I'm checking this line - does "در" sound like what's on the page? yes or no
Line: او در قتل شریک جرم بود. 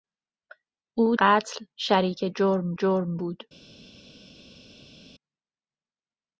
no